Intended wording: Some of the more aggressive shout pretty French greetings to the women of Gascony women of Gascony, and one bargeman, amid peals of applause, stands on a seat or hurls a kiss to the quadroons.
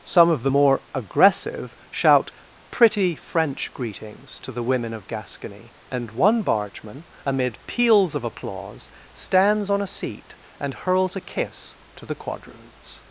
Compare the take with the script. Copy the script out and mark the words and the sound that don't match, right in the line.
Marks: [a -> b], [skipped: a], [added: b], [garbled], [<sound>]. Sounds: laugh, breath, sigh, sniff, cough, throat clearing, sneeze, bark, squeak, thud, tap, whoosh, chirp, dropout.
Some of the more aggressive shout pretty French greetings to the women of Gascony [skipped: women of Gascony,] and one bargeman, amid peals of applause, stands on a seat [or -> and] hurls a kiss to the quadroons.